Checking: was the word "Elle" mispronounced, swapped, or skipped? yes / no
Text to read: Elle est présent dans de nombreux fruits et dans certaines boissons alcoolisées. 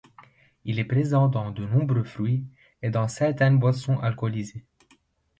yes